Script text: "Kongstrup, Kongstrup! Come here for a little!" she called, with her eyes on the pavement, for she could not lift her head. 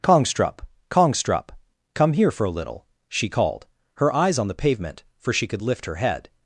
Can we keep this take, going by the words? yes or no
no